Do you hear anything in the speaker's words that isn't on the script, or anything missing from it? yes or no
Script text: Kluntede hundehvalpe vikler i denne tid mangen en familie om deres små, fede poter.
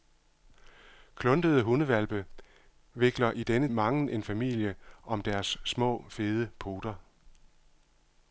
yes